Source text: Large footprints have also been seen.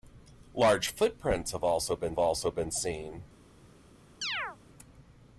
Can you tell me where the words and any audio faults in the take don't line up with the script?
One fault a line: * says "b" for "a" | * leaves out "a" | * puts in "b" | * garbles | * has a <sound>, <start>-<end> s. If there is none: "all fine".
* puts in "also been"
* has a chirp, 4.2-4.6 s